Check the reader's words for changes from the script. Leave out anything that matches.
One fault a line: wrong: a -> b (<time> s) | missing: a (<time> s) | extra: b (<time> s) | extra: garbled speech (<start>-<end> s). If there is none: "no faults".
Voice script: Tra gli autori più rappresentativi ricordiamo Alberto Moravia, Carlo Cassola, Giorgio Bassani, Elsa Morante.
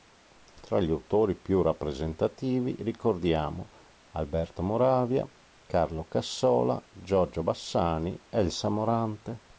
no faults